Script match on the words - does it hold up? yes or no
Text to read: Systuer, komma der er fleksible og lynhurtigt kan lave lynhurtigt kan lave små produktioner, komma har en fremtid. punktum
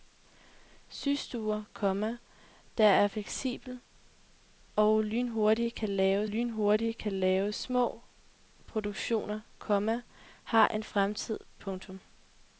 yes